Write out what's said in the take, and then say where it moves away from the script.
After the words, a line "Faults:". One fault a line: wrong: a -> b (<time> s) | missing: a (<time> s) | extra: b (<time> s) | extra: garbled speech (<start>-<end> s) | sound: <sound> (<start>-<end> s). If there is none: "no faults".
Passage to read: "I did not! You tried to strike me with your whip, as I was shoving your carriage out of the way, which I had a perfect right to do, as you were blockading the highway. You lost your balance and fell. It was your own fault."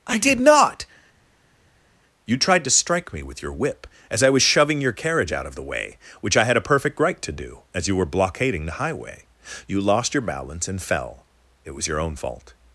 "I did not! You tried to strike me with your whip, as I was shoving your carriage out of the way, which I had a perfect right to do, as you were blockading the highway. You lost your balance and fell. It was your own fault."
Faults:
no faults